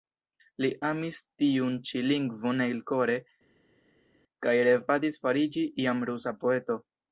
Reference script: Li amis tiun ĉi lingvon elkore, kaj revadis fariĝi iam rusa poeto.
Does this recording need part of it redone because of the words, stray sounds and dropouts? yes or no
no